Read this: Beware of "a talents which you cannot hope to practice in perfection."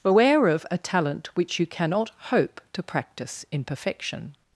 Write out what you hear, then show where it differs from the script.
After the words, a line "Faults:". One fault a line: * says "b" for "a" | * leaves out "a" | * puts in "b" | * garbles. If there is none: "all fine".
Beware of "a talent which you cannot hope to practice in perfection."
Faults:
* says "talent" for "talents"